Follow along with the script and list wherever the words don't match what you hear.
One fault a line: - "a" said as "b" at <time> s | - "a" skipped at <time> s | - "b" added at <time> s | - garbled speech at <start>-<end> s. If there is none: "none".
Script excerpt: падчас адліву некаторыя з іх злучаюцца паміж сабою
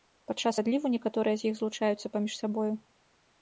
none